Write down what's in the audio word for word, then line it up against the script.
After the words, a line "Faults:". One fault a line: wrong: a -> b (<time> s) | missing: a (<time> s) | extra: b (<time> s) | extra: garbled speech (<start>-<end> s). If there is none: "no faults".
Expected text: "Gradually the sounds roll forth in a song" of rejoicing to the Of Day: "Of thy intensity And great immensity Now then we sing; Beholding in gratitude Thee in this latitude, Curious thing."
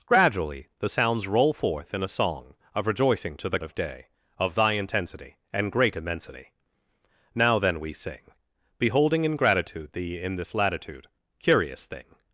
"Gradually the sounds roll forth in a song" of rejoicing to the Of Day: "Of thy intensity And great immensity Now then we sing; Beholding in gratitude Thee in this latitude, Curious thing."
Faults:
no faults